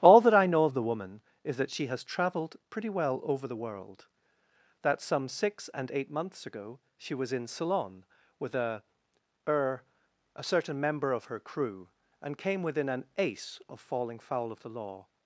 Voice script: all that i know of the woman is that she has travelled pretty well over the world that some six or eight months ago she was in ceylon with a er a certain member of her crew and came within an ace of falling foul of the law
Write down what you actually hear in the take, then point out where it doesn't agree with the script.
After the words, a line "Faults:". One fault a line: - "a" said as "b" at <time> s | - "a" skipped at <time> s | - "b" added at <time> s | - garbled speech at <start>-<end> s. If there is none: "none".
all that i know of the woman is that she has travelled pretty well over the world that some six and eight months ago she was in ceylon with a er a certain member of her crew and came within an ace of falling foul of the law
Faults:
- "or" said as "and" at 5.8 s